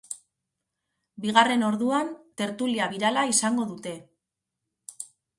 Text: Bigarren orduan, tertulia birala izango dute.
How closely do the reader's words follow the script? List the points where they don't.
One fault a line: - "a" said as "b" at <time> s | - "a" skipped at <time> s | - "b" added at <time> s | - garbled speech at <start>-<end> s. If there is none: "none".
none